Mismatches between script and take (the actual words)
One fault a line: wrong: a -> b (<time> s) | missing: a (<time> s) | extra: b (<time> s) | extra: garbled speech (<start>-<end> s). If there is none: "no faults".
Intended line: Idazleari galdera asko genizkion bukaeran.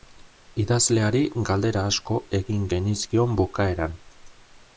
extra: egin (2.4 s)